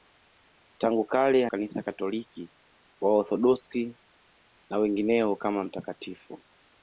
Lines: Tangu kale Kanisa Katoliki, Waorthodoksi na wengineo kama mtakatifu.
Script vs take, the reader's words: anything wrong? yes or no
no